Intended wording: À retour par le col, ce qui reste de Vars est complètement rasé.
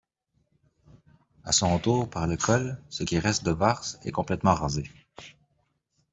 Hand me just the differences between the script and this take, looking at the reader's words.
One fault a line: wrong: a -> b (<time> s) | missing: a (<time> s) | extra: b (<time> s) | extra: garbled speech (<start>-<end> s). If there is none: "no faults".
extra: son (1.5 s)